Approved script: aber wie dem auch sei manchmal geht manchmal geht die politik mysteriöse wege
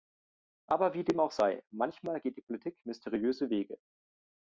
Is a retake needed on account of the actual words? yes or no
yes